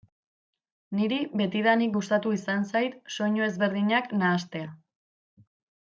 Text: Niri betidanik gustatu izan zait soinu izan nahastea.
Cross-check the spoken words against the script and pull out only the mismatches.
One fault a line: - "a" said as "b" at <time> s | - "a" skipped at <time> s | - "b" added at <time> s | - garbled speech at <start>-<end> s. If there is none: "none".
- "izan" said as "ezberdinak" at 3.5 s